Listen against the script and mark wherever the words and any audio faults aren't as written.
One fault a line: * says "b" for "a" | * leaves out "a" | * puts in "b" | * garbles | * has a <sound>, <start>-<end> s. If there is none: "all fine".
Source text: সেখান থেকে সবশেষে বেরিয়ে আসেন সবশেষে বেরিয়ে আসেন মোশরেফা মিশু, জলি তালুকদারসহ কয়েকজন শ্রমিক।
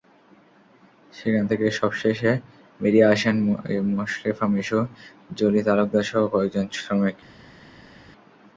* leaves out "সবশেষে বেরিয়ে আসেন"